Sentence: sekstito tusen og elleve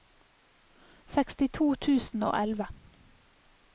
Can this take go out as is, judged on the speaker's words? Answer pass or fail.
pass